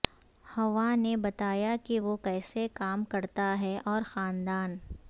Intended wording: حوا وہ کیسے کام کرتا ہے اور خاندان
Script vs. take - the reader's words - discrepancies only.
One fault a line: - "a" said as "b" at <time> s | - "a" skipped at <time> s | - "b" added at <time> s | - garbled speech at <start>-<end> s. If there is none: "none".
- "نے بتایا کہ" added at 0.9 s